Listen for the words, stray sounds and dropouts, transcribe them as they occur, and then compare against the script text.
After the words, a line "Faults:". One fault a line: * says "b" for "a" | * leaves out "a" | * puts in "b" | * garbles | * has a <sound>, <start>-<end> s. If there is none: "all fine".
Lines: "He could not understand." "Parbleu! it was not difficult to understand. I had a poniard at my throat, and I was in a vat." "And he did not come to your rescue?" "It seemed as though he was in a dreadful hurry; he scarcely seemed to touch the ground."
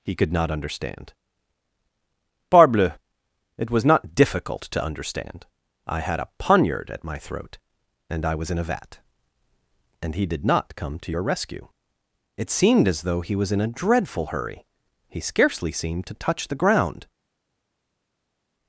"He could not understand." "Parbleu! it was not difficult to understand. I had a poniard at my throat, and I was in a vat." "And he did not come to your rescue?" "It seemed as though he was in a dreadful hurry; he scarcely seemed to touch the ground."
Faults:
all fine